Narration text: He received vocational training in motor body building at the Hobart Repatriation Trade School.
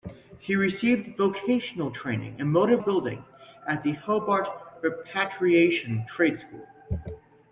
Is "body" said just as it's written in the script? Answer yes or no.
no